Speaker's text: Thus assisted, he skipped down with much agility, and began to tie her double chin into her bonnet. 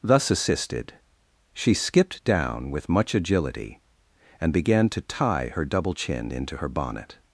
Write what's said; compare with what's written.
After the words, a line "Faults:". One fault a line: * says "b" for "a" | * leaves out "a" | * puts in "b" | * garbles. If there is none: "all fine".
Thus assisted, she skipped down with much agility, and began to tie her double chin into her bonnet.
Faults:
* says "she" for "he"